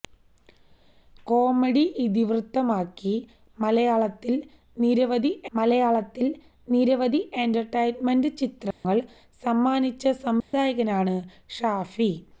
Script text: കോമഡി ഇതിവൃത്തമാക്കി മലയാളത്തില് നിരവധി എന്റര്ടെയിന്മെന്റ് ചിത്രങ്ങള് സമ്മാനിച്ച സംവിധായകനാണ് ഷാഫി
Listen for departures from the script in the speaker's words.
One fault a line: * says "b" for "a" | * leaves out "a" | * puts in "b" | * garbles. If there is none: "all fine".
* puts in "മലയാളത്തില് നിരവധി"